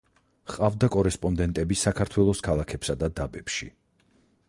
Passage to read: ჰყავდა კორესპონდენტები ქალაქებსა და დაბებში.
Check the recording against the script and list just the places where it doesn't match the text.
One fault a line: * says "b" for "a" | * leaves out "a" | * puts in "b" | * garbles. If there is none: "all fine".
* puts in "საქართველოს"